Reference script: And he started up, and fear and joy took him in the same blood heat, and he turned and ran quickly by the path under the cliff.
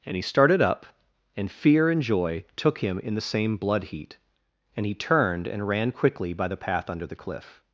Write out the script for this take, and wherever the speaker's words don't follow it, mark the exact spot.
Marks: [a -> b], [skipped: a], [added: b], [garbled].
And he started up, and fear and joy took him in the same blood heat, and he turned and ran quickly by the path under the cliff.